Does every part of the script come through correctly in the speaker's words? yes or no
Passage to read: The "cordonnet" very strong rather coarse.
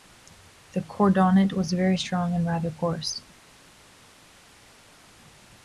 no